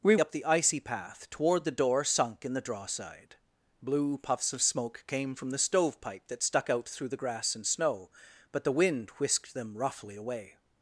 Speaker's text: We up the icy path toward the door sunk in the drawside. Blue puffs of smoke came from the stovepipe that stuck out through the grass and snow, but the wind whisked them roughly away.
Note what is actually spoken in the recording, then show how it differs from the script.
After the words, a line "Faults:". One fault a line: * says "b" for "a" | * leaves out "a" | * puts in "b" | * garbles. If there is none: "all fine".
We up the icy path toward the door sunk in the drawside. Blue puffs of smoke came from the stovepipe that stuck out through the grass and snow, but the wind whisked them roughly away.
Faults:
all fine